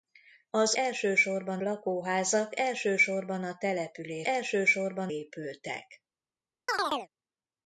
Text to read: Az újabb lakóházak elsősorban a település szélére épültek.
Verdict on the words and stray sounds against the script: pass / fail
fail